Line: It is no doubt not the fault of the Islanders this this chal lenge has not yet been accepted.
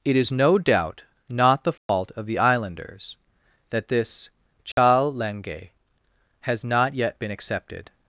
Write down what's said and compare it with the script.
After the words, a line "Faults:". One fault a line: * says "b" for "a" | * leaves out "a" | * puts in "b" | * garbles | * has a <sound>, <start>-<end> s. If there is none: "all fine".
It is no doubt not the fault of the Islanders that this chal lenge has not yet been accepted.
Faults:
* has a dropout, 1.8-1.9 s
* says "that" for "this"
* has a dropout, 4.7-4.8 s